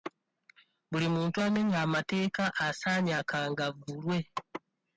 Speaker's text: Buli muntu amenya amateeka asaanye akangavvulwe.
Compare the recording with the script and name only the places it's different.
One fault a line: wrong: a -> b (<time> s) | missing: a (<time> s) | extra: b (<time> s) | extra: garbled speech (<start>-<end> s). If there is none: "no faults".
no faults